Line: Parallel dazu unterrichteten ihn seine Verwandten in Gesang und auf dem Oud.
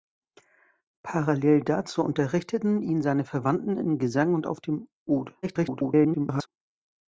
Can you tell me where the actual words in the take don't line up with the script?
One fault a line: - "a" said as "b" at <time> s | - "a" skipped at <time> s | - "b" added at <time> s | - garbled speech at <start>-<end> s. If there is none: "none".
- garbled speech at 5.4-6.5 s